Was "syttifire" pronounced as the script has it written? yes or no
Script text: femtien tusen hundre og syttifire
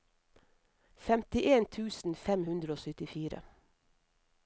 yes